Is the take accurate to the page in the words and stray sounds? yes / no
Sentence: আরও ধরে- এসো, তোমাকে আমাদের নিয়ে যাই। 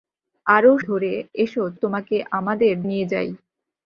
yes